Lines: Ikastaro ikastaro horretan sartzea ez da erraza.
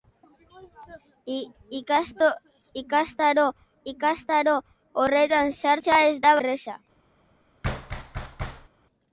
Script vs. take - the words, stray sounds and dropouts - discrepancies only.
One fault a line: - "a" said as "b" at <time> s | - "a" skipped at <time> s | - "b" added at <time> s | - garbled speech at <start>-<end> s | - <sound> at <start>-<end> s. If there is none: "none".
- thud at 7.6-8.7 s